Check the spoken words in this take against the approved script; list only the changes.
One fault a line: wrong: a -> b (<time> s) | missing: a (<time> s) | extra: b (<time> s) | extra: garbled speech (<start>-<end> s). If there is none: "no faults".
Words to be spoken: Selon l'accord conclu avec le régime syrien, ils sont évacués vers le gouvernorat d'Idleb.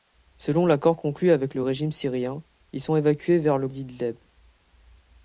missing: gouvernorat (3.7 s)